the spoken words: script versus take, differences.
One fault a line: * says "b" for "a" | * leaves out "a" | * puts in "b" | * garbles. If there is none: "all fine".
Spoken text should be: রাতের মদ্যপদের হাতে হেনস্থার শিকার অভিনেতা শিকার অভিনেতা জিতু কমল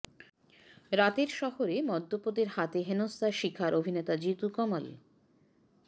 * puts in "শহরে"
* leaves out "শিকার অভিনেতা"